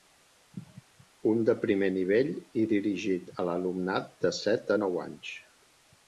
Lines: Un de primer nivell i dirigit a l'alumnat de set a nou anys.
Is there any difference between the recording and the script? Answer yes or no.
no